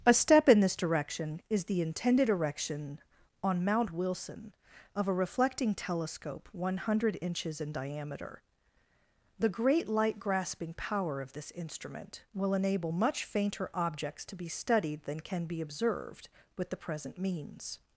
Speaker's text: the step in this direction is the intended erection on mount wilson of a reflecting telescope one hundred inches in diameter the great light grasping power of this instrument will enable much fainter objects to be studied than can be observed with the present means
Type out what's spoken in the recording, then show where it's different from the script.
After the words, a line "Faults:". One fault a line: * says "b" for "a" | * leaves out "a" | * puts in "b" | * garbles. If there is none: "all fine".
a step in this direction is the intended erection on mount wilson of a reflecting telescope one hundred inches in diameter the great light grasping power of this instrument will enable much fainter objects to be studied than can be observed with the present means
Faults:
* says "a" for "the"